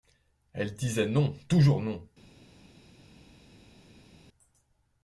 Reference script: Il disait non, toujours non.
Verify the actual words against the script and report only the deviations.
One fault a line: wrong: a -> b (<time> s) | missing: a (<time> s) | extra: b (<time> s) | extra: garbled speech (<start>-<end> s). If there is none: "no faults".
wrong: Il -> Elle (0.5 s)